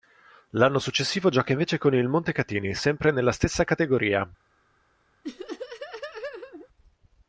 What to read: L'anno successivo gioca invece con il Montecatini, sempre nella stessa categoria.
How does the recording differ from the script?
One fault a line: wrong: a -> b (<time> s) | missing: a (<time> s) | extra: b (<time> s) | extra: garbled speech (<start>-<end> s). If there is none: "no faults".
no faults